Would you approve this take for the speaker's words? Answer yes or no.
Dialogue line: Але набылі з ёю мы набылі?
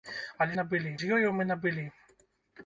yes